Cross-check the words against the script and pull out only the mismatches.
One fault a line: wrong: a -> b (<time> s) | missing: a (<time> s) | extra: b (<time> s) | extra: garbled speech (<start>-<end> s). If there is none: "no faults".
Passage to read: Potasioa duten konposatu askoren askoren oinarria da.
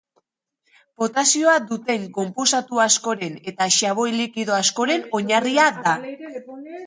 extra: eta xaboi likido (3.5 s)